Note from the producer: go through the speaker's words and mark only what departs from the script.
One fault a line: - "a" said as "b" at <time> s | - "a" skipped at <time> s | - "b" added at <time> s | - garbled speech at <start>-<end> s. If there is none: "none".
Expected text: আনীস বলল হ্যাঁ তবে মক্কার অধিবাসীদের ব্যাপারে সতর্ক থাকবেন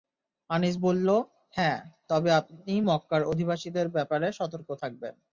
- "আপনি" added at 2.3 s